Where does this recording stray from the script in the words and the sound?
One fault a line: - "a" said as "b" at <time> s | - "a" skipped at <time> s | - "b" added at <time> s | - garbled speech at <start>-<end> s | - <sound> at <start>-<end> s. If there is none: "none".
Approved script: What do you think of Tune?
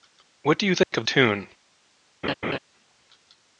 - dropout at 0.8-0.9 s
- laugh at 2.2-2.6 s